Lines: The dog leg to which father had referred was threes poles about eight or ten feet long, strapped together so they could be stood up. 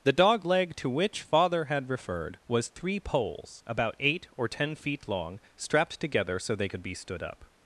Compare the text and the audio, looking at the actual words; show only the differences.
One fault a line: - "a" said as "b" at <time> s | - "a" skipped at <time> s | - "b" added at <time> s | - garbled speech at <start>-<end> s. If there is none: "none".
- "threes" said as "three" at 2.7 s